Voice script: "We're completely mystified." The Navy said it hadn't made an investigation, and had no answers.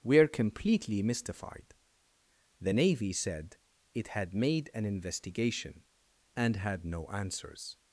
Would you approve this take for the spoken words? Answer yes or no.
no